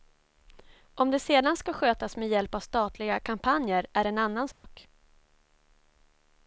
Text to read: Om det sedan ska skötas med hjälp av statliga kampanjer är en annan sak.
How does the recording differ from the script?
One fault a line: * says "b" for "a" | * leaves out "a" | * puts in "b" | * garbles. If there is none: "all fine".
all fine